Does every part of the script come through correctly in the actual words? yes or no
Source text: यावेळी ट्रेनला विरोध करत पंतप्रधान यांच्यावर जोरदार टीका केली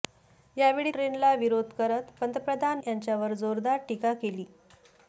yes